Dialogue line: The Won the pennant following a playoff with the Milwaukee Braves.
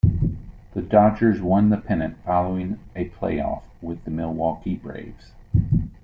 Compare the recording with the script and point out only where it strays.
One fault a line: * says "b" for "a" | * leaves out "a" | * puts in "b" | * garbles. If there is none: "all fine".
* puts in "Dodgers"